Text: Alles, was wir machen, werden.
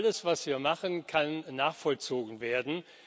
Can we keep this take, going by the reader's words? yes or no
no